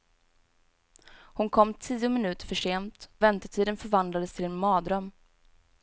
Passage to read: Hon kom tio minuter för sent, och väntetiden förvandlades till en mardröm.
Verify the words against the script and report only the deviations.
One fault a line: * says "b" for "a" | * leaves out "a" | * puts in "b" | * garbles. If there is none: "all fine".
* leaves out "och"